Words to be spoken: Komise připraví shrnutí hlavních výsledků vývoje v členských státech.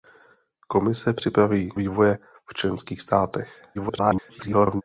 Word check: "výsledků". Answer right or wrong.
wrong